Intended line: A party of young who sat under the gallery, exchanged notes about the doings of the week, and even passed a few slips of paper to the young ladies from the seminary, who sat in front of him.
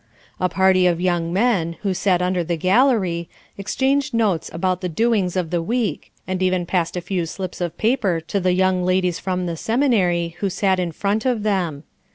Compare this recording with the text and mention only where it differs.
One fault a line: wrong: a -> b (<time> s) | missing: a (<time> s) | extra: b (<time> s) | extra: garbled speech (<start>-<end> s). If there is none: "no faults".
extra: men (1.3 s)
wrong: him -> them (11.4 s)